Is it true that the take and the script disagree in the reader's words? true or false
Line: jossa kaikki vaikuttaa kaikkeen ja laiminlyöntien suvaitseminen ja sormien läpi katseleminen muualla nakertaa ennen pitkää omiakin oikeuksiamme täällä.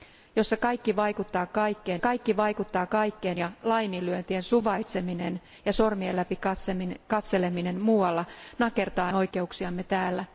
true